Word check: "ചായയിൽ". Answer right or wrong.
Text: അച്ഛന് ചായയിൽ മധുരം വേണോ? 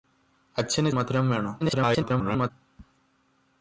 wrong